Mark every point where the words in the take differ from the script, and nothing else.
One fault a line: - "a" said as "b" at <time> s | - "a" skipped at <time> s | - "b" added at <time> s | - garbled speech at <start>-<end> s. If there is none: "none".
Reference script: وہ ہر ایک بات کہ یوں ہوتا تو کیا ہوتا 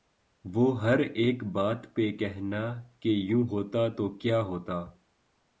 - "پہ کہنا" added at 1.9 s